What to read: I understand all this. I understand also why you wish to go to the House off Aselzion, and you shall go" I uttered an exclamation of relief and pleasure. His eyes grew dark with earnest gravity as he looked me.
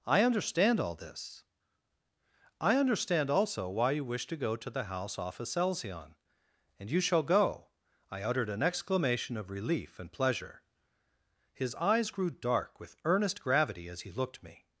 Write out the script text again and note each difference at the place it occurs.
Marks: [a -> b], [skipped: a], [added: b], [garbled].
I understand all this. I understand also why you wish to go to the House off Aselzion, and you shall go" I uttered an exclamation of relief and pleasure. His eyes grew dark with earnest gravity as he looked me.